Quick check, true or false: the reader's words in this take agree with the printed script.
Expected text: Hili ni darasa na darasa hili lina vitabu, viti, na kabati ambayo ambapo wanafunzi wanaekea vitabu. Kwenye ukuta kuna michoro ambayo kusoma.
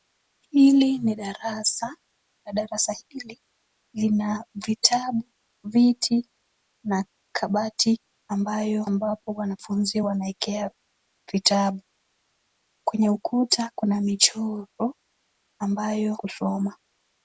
true